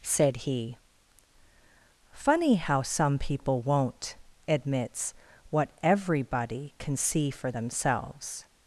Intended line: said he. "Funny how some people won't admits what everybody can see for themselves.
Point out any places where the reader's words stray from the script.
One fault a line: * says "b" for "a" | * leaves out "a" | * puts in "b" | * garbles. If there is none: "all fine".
all fine